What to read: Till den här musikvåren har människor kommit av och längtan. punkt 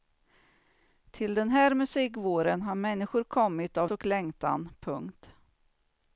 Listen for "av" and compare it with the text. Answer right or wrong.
right